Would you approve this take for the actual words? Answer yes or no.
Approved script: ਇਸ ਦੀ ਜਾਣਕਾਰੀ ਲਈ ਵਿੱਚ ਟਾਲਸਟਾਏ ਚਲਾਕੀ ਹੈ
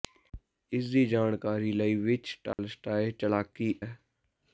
yes